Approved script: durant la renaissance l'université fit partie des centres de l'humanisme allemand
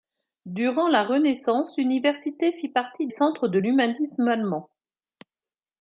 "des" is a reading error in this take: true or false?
true